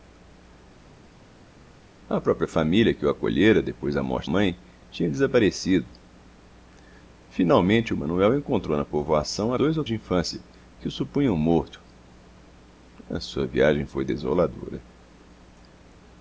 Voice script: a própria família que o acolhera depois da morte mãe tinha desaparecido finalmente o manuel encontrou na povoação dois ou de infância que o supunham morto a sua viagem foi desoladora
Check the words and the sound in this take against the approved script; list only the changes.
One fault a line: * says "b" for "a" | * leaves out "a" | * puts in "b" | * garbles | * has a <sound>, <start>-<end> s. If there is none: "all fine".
all fine